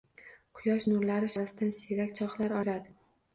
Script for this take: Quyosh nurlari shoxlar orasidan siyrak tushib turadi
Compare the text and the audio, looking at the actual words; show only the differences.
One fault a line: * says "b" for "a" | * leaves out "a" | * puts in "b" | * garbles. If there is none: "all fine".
* leaves out "shoxlar"
* says "shoxlar" for "tushib"